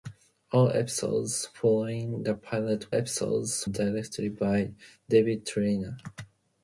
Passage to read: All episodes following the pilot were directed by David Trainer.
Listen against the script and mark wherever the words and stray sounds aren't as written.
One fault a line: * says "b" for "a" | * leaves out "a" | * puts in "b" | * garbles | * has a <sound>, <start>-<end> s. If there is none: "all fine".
* says "episodes" for "were"